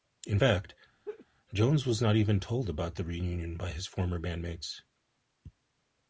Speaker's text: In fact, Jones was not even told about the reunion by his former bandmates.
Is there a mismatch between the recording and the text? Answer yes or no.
no